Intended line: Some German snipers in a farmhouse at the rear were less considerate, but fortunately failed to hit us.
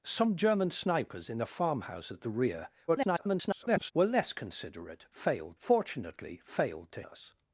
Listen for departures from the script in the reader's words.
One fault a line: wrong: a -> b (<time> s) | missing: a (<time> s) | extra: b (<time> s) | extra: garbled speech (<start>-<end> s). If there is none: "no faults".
extra: garbled speech (2.9-3.9 s)
wrong: but -> failed (5.1 s)
missing: hit (7.0 s)